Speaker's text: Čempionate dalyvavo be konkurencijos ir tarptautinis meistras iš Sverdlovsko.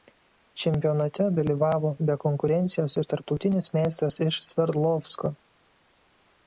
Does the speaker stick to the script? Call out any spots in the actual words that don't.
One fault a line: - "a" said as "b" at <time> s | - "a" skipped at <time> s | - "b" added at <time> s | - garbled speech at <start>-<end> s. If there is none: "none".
none